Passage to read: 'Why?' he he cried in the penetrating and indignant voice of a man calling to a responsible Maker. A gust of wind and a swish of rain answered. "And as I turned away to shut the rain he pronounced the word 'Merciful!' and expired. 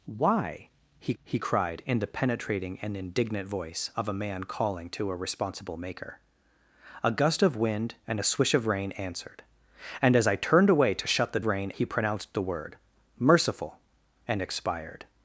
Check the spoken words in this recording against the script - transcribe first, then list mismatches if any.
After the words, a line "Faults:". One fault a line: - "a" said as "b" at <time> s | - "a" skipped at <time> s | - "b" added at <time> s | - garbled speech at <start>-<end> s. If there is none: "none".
'Why?' he he cried in the penetrating and indignant voice of a man calling to a responsible Maker. A gust of wind and a swish of rain answered. "And as I turned away to shut the rain he pronounced the word 'Merciful!' and expired.
Faults:
none